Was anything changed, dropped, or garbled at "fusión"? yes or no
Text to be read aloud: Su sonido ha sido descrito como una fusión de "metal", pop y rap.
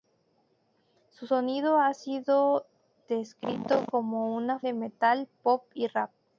yes